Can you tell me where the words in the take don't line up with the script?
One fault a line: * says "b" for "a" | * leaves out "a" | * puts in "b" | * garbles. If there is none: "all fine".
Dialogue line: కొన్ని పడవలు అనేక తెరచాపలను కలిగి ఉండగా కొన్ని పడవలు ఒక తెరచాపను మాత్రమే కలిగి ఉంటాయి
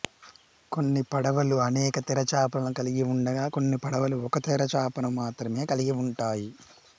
all fine